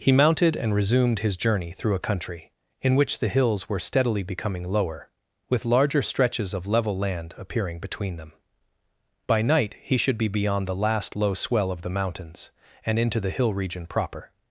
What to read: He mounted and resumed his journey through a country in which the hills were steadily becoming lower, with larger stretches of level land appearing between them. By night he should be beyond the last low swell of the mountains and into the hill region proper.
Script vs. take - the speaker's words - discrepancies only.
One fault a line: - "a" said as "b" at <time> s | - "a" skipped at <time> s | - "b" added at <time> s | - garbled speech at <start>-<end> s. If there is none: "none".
none